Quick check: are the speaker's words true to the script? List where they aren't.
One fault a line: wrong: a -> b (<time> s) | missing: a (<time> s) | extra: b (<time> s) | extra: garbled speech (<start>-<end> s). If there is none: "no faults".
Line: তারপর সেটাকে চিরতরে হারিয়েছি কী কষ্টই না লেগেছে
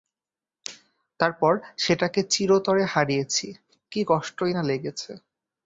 no faults